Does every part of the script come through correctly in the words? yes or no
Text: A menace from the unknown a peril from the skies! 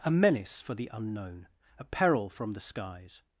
no